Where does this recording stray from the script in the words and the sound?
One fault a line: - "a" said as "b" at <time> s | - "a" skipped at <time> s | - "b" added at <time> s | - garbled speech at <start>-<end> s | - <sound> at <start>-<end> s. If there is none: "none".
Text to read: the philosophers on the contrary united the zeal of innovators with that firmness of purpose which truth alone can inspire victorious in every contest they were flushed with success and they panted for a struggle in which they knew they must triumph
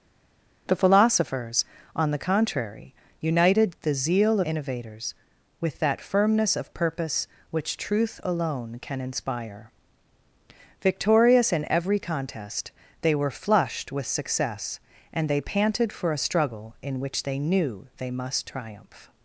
- "of" skipped at 4.4 s